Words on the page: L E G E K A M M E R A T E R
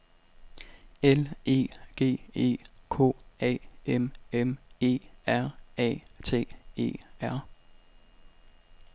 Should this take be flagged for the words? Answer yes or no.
no